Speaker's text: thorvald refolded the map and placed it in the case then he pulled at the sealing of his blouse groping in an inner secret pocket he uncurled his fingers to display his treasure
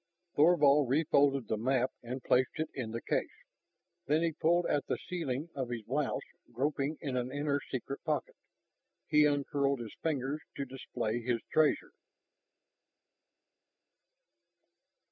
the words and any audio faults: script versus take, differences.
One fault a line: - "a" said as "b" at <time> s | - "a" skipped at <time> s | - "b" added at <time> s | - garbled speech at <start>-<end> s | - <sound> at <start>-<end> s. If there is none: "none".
none